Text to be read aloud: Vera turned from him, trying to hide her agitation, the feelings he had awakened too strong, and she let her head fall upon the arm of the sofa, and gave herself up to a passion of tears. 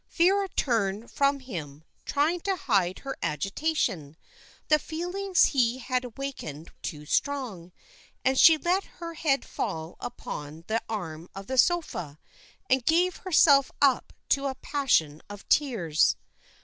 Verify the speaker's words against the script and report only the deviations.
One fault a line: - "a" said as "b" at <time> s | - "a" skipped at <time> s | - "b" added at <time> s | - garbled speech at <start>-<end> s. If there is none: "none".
none